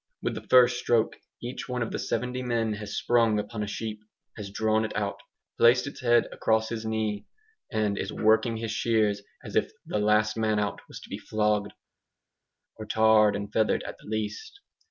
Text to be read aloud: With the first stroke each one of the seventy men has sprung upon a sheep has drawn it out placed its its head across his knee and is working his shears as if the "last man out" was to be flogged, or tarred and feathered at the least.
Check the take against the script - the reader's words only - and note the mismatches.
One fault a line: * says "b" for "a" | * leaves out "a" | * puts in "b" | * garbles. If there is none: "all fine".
* leaves out "its"